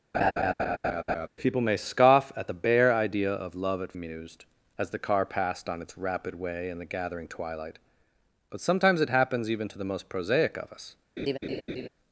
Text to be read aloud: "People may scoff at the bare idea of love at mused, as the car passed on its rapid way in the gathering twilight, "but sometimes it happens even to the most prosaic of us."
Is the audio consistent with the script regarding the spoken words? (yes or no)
yes